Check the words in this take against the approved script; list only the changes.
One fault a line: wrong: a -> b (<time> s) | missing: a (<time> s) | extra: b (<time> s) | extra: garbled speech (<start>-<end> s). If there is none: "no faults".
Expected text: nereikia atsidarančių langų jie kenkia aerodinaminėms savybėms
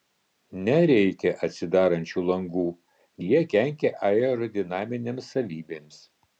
no faults